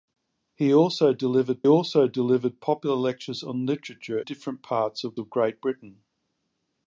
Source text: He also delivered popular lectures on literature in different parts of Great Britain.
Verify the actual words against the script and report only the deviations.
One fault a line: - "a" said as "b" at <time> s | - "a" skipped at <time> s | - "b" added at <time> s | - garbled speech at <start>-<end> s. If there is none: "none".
- "also delivered" added at 1.7 s
- "in" skipped at 4.2 s
- "of" added at 5.2 s